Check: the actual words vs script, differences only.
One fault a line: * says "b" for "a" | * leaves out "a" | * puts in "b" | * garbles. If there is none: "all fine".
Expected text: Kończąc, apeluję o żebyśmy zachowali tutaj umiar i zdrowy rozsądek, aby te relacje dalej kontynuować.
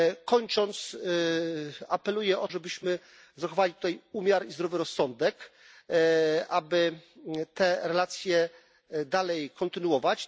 all fine